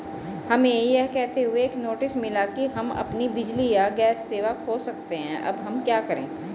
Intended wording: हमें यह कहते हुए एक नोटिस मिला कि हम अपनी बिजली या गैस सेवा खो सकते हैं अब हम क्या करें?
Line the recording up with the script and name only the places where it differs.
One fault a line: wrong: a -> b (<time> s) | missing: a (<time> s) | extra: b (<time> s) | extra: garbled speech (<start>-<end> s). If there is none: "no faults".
no faults